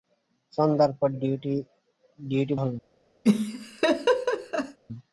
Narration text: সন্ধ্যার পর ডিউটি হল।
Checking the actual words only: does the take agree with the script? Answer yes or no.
yes